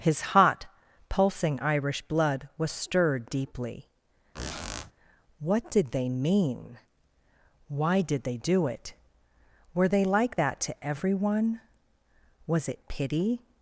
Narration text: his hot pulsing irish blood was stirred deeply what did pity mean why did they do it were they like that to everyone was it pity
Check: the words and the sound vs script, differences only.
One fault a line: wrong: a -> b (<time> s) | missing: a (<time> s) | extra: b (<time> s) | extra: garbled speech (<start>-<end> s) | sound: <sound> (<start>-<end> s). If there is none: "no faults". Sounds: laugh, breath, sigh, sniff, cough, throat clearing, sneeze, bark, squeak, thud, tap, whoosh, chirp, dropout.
sound: squeak (4.3-4.9 s)
wrong: pity -> they (5.9 s)